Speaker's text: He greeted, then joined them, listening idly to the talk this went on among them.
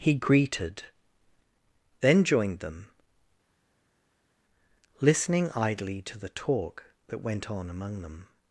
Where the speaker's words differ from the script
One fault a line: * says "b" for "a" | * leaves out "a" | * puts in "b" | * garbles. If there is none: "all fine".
* says "that" for "this"